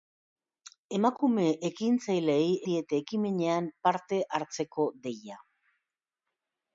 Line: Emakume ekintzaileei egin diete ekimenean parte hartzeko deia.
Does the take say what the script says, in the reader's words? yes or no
no